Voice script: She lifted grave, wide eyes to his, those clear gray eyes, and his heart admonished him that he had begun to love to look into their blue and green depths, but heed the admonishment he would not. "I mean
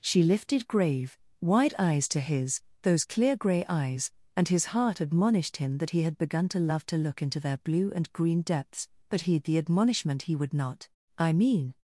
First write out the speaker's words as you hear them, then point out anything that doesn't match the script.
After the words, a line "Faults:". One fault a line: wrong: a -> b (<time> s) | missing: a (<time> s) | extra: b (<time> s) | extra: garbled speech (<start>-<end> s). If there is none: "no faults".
She lifted grave, wide eyes to his, those clear gray eyes, and his heart admonished him that he had begun to love to look into their blue and green depths, but heed the admonishment he would not. "I mean
Faults:
no faults